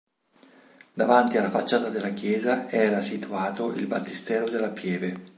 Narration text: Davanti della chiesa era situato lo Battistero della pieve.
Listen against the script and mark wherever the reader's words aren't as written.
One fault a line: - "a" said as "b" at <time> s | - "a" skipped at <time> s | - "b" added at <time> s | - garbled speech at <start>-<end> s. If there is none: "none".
- "alla facciata" added at 1.4 s
- "lo" said as "il" at 3.7 s